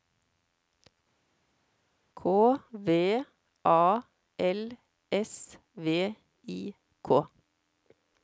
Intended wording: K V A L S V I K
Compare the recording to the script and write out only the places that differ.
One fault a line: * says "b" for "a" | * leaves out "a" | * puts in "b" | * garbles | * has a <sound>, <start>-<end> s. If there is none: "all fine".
all fine